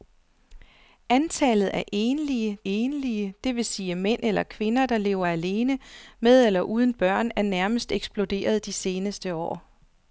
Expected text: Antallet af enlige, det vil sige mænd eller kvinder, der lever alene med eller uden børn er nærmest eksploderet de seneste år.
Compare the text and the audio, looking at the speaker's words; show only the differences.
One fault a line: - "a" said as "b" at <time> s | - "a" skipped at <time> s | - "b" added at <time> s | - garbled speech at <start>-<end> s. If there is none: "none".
- "enlige" added at 2.6 s